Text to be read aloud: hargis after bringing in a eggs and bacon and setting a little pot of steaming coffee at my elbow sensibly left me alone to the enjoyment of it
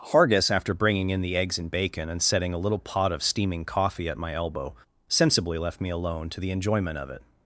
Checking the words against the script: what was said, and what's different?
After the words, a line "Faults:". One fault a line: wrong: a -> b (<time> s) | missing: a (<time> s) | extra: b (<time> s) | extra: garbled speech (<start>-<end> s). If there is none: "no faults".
hargis after bringing in the eggs and bacon and setting a little pot of steaming coffee at my elbow sensibly left me alone to the enjoyment of it
Faults:
wrong: a -> the (1.2 s)